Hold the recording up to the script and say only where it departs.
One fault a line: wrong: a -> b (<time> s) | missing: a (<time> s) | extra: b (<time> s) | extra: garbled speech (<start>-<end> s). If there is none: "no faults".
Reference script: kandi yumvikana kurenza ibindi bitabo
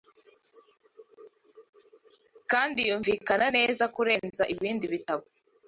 extra: neza (3.6 s)